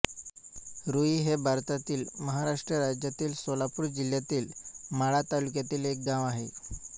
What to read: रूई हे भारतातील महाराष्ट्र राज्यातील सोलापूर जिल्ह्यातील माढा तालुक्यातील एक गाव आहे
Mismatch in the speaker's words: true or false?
false